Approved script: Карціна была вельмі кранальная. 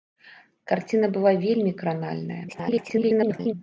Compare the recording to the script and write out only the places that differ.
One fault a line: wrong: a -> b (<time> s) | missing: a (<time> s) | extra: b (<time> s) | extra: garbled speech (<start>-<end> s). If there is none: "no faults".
extra: garbled speech (2.5-3.5 s)